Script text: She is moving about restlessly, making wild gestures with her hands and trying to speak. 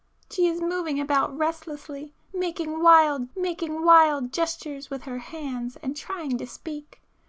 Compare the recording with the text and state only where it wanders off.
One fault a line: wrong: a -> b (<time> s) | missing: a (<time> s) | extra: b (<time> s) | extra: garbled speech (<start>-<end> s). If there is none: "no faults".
extra: making wild (3.4 s)